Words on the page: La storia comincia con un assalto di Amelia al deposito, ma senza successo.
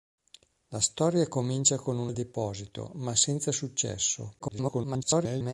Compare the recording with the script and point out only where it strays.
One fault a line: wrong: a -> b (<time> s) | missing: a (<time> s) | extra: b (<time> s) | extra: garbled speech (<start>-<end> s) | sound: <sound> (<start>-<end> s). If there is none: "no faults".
missing: assalto di Amelia (2.1 s)
extra: garbled speech (4.4-5.5 s)